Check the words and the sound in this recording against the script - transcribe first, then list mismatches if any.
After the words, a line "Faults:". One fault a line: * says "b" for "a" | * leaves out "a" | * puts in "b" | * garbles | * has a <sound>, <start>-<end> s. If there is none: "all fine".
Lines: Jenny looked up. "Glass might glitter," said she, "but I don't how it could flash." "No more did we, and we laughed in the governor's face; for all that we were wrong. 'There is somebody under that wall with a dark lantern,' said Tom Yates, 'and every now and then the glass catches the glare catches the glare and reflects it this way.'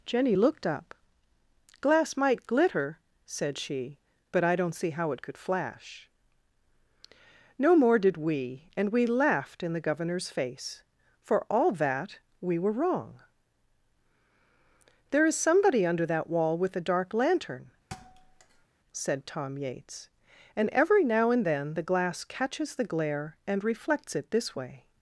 Jenny looked up. "Glass might glitter," said she, "but I don't see how it could flash." "No more did we, and we laughed in the governor's face; for all that we were wrong. 'There is somebody under that wall with a dark lantern,' said Tom Yates, 'and every now and then the glass catches the glare and reflects it this way.'
Faults:
* puts in "see"
* has a thud, 17.9-18.7 s
* leaves out "catches the glare"